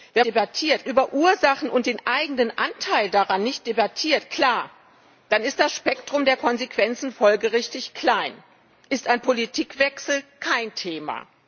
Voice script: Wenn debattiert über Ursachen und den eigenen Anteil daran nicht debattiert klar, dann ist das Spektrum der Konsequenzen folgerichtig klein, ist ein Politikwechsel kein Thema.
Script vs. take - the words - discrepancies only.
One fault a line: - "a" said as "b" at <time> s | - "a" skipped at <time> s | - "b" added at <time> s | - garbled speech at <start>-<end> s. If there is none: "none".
none